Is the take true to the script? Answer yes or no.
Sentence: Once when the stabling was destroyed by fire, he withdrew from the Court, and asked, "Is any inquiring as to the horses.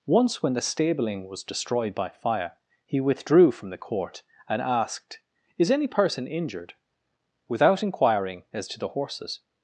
no